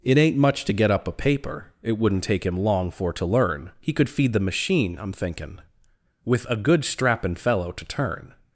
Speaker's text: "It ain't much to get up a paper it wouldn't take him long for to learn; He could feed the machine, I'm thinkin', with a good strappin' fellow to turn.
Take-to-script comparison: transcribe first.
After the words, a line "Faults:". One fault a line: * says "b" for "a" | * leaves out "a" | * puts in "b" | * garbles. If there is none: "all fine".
"It ain't much to get up a paper it wouldn't take him long for to learn; He could feed the machine, I'm thinkin', with a good strappin' fellow to turn.
Faults:
all fine